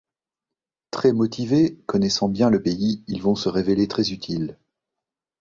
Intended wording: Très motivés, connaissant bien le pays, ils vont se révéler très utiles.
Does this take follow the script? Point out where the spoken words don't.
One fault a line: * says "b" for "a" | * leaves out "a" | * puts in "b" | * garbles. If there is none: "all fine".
all fine